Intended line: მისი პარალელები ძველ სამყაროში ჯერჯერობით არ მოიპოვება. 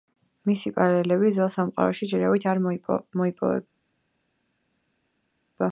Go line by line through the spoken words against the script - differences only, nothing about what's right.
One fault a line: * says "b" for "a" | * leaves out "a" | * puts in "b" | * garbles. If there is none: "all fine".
all fine